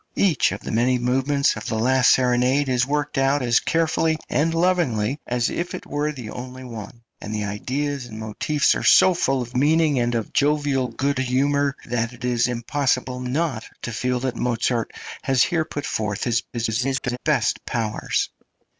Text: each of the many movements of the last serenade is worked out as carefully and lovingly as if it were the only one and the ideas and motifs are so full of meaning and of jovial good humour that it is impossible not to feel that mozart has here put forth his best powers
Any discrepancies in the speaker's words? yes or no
yes